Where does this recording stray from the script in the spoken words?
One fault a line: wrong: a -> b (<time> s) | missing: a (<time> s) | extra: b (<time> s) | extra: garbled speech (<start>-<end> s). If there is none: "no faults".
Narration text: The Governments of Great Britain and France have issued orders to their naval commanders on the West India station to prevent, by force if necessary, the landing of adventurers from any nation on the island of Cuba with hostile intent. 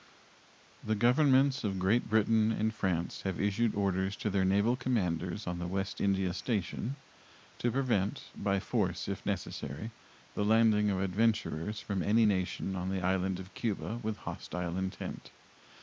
no faults